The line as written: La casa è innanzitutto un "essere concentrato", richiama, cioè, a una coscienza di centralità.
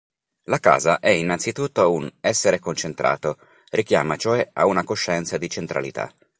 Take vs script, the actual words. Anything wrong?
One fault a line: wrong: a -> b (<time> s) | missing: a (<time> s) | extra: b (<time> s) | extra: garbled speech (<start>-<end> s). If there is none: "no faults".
no faults